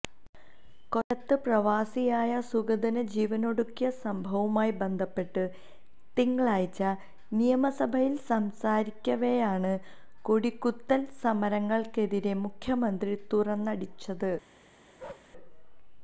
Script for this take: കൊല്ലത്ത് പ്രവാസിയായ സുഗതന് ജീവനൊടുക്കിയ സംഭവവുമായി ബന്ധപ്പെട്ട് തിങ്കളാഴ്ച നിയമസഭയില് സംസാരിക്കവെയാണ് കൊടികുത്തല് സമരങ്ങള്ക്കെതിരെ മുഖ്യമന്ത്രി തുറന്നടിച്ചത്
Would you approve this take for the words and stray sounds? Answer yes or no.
no